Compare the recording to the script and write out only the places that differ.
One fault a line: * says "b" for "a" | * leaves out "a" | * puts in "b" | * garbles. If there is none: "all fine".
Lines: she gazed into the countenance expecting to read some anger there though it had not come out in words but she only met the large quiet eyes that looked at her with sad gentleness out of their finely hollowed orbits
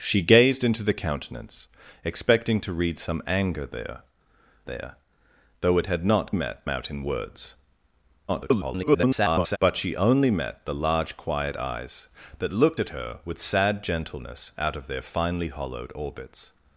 * puts in "there"
* says "met" for "come"
* garbles